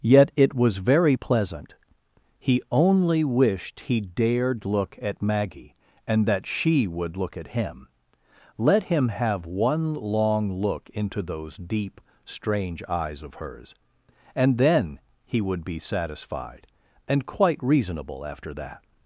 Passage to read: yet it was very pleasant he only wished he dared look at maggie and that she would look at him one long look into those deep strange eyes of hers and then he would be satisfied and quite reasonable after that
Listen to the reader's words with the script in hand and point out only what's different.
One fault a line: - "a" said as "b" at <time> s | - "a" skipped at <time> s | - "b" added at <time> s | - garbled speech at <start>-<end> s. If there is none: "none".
- "let him have" added at 8.6 s